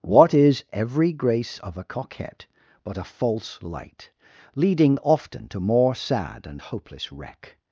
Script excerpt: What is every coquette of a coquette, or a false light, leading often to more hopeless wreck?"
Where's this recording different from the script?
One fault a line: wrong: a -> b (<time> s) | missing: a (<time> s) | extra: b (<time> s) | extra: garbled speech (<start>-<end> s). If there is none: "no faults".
wrong: coquette -> grace (1.1 s)
wrong: or -> but (2.8 s)
extra: sad and (5.9 s)